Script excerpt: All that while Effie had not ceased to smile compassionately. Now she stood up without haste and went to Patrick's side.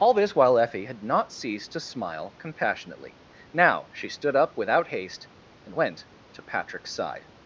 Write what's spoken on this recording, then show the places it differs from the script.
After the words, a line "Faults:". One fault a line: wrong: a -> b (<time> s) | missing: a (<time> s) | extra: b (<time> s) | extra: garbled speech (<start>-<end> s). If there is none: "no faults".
All this while Effie had not ceased to smile compassionately. Now she stood up without haste and went to Patrick's side.
Faults:
wrong: that -> this (0.1 s)